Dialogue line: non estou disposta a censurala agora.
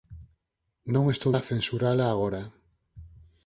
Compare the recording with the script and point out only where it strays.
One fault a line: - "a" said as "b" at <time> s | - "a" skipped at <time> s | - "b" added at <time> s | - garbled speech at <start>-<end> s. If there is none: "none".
- "disposta" skipped at 1.3 s